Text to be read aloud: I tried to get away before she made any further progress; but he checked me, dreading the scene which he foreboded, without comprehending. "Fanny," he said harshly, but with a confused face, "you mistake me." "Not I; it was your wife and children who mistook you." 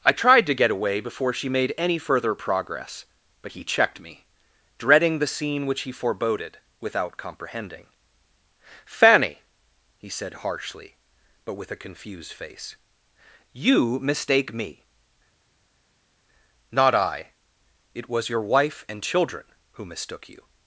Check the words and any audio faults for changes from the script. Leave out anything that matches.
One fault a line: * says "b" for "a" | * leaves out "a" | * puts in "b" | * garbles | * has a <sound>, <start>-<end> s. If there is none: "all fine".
all fine